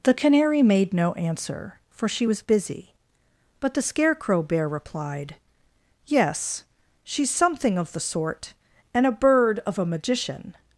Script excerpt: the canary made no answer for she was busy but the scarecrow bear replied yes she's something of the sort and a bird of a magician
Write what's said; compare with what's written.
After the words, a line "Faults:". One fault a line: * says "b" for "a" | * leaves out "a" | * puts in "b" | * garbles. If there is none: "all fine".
the canary made no answer for she was busy but the scarecrow bear replied yes she's something of the sort and a bird of a magician
Faults:
all fine